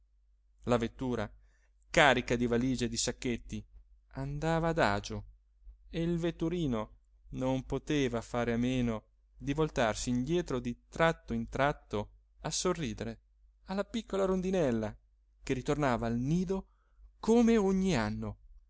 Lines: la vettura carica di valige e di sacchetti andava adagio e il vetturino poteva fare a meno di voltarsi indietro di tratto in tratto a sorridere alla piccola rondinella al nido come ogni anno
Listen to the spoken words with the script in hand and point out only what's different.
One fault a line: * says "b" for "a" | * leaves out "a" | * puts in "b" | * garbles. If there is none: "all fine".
* puts in "non"
* puts in "che ritornava"